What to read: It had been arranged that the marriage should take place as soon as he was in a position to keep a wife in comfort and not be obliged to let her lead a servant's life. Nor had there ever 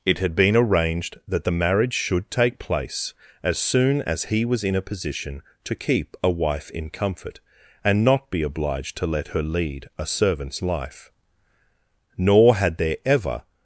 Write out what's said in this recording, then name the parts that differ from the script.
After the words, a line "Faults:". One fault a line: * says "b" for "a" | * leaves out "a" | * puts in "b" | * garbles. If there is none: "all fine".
It had been arranged that the marriage should take place as soon as he was in a position to keep a wife in comfort and not be obliged to let her lead a servant's life. Nor had there ever
Faults:
all fine